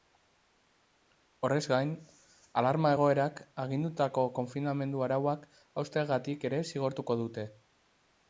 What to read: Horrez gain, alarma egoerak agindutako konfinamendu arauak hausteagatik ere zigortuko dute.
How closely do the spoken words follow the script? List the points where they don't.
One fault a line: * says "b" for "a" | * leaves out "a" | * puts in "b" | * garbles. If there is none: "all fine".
all fine